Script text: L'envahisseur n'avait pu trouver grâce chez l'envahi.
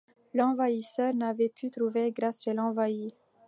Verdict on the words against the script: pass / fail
pass